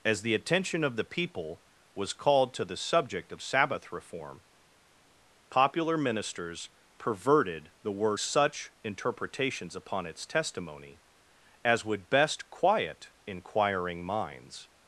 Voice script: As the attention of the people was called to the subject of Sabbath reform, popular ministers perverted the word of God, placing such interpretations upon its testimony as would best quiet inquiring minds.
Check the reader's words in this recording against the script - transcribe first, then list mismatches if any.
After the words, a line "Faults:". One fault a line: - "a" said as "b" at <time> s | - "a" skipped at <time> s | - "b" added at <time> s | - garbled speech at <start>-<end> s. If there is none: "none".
As the attention of the people was called to the subject of Sabbath reform, popular ministers perverted the word such interpretations upon its testimony as would best quiet inquiring minds.
Faults:
- "of God placing" skipped at 8.2 s